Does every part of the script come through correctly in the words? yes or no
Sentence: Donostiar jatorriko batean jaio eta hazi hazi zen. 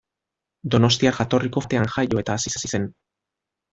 yes